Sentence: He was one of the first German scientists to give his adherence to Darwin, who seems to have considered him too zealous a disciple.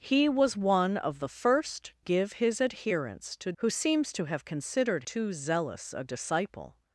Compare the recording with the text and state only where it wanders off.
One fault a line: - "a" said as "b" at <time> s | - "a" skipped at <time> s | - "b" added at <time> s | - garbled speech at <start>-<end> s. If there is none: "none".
- "German scientists to" skipped at 1.9 s
- "Darwin" skipped at 3.5 s
- "him" skipped at 5.0 s